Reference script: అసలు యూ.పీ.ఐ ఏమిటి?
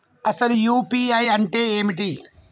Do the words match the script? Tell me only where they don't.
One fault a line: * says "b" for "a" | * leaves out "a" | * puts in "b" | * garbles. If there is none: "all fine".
* puts in "అంటే"